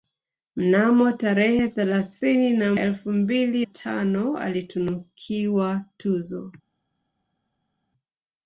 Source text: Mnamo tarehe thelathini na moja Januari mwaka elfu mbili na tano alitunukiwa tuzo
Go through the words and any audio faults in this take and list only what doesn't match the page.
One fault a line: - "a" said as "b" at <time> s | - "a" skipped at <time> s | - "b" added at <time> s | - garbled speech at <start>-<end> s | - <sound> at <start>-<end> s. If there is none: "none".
- "moja Januari mwaka" skipped at 2.7 s
- "na" skipped at 3.7 s